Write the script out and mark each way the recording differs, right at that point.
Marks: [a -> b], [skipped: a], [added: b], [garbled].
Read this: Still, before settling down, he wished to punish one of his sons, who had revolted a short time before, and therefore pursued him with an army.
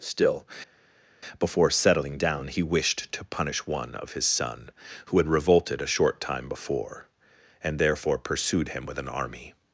Still, before settling down, he wished to punish one of his [sons, -> son] who had revolted a short time before, and therefore pursued him with an army.